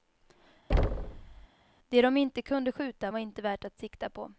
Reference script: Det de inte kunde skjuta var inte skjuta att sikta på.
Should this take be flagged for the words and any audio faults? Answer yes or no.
yes